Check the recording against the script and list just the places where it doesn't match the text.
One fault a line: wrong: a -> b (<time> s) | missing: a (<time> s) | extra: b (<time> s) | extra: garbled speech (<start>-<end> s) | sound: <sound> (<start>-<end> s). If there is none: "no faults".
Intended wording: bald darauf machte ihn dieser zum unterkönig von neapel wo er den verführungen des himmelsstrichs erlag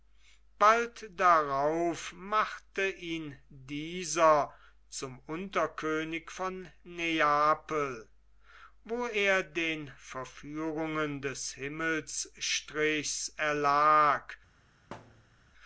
sound: thud (14.9-15.5 s)